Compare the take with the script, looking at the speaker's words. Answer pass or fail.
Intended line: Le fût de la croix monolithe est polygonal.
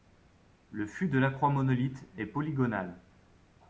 pass